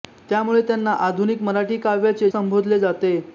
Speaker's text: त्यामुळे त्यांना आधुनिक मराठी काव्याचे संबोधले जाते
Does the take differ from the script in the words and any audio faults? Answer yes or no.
no